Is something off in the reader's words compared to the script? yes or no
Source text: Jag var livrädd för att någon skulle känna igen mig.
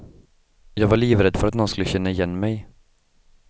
no